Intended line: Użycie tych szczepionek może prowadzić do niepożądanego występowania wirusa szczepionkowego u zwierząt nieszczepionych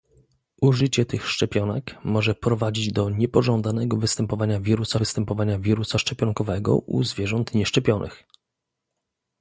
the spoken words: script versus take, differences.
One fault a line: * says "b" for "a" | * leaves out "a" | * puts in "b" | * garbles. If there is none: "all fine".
* puts in "występowania wirusa"